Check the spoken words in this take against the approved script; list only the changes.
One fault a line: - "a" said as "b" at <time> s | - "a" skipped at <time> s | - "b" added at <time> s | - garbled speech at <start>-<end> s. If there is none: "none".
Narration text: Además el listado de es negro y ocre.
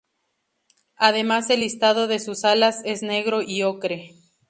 - "sus alas" added at 2.2 s